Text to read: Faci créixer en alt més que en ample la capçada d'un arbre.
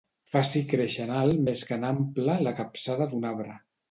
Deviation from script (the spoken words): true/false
false